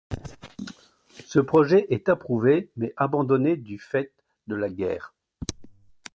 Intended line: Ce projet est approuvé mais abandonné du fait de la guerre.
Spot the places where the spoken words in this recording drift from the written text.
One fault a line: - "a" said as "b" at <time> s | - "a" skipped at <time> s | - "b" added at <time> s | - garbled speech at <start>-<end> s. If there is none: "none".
none